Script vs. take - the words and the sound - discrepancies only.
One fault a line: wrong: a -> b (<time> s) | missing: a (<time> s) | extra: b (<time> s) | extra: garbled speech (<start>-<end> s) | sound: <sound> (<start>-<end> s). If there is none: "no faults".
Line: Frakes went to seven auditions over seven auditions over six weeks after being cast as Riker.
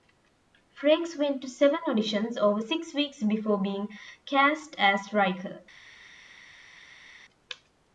missing: seven auditions over (2.6 s)
wrong: after -> before (3.2 s)